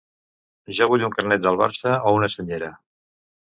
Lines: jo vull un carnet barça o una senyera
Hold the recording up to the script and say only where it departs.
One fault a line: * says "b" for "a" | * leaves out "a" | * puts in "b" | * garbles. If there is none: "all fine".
* puts in "del"